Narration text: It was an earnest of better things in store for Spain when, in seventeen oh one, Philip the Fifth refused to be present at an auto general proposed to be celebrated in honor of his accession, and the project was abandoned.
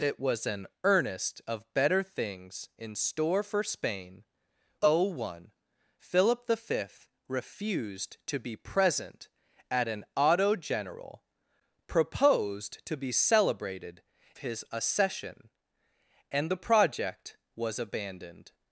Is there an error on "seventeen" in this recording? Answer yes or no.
yes